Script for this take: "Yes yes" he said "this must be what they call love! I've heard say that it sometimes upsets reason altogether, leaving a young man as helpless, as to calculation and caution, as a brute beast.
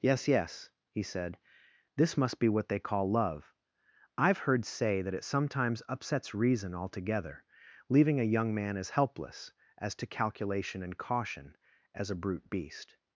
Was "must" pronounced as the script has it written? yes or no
yes